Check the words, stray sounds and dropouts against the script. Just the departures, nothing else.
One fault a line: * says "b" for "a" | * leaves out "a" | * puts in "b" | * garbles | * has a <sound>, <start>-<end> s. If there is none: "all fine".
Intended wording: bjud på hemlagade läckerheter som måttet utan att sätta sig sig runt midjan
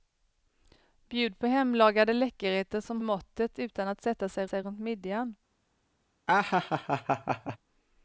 * has a laugh, 6.3-7.6 s